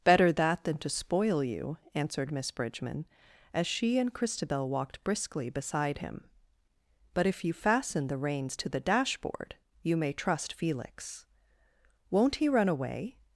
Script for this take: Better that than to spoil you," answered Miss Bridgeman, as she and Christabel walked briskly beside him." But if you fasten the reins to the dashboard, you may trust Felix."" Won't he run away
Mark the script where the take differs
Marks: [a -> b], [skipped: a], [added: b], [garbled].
Better that than to spoil you," answered Miss Bridgeman, as she and Christabel walked briskly beside him." But if you fasten the reins to the dashboard, you may trust Felix."" Won't he run away